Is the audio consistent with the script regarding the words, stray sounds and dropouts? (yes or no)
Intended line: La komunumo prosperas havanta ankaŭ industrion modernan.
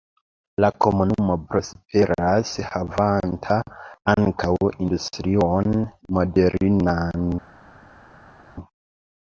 yes